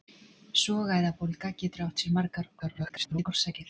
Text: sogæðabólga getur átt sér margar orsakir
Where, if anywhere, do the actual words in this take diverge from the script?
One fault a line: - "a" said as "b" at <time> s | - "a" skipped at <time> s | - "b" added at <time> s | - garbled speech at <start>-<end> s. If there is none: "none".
- garbled speech at 2.6-3.3 s